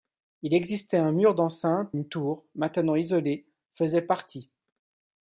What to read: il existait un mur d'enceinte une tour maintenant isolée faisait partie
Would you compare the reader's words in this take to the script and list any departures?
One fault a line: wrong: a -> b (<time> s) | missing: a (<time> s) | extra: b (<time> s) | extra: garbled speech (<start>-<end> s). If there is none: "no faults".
no faults